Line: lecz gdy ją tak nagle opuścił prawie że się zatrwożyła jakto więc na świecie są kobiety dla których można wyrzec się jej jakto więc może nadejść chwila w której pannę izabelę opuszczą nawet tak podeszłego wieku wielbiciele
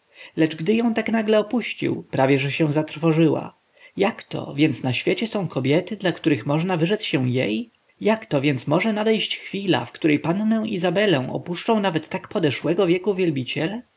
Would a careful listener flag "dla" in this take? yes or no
no